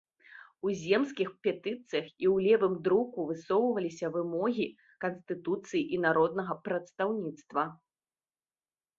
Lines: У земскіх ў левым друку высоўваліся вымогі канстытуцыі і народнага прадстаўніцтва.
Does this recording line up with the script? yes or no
no